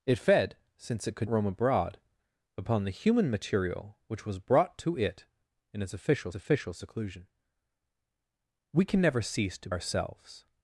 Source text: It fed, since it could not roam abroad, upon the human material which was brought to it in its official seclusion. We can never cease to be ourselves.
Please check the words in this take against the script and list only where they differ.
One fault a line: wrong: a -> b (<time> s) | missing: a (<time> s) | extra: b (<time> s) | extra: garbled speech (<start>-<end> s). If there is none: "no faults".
missing: not (1.3 s)
extra: official (6.3 s)
missing: be (9.7 s)